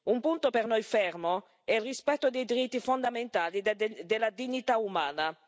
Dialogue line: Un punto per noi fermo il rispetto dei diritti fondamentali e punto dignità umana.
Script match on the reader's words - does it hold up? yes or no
no